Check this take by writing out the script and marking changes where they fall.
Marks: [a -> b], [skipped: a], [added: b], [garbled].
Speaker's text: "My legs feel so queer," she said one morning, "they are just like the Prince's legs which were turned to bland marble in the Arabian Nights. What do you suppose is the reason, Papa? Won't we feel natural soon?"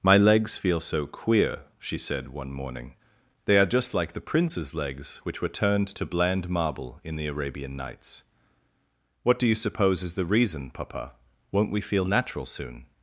"My legs feel so queer," she said one morning, "they are just like the Prince's legs which were turned to bland marble in the Arabian Nights. What do you suppose is the reason, Papa? Won't we feel natural soon?"